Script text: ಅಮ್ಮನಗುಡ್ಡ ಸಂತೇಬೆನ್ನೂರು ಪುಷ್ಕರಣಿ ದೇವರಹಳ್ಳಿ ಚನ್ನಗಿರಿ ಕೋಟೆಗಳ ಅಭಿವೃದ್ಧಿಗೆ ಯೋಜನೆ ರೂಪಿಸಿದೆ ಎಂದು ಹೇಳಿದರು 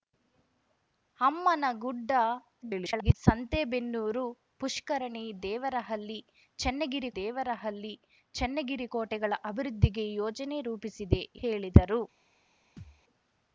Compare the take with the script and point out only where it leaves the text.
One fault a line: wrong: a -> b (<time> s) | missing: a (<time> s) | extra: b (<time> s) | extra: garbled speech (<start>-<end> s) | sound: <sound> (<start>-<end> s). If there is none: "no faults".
extra: garbled speech (2.6-3.1 s)
extra: ದೇವರಹಳ್ಳಿ ಚನ್ನಗಿರಿ (7.2 s)
missing: ಎಂದು (11.2 s)
sound: thud (12.8-13.0 s)